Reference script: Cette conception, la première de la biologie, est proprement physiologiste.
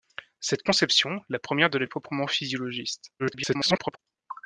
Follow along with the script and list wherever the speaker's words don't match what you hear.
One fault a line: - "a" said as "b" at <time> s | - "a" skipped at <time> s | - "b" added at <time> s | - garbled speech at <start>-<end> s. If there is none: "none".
- "biologie" skipped at 1.8 s
- garbled speech at 3.2-4.0 s